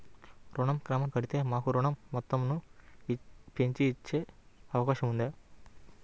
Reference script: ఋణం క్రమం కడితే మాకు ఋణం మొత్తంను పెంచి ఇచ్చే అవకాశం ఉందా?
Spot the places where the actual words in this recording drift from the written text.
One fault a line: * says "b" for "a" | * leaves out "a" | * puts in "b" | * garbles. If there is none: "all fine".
all fine